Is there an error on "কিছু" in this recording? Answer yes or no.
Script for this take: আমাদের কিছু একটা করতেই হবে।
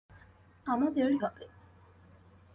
yes